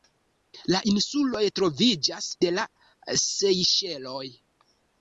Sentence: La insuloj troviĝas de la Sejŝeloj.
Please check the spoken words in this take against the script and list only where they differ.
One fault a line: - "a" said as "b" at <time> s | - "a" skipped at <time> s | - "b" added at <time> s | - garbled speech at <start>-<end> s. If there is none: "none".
none